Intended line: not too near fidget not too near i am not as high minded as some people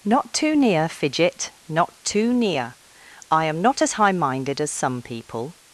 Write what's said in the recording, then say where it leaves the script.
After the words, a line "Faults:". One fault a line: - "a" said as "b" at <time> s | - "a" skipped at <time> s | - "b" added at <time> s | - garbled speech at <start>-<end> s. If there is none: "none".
not too near fidget not too near i am not as high minded as some people
Faults:
none